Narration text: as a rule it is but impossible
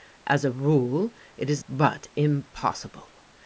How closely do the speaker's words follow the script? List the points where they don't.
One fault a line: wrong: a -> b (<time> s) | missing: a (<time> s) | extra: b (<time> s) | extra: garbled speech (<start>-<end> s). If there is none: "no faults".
no faults